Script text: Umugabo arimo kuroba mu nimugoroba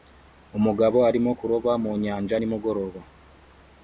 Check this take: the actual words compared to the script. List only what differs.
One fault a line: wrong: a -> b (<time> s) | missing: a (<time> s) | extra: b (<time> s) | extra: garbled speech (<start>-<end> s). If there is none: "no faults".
extra: nyanja (2.0 s)